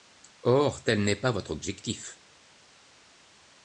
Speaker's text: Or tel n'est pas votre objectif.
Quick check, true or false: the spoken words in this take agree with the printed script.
true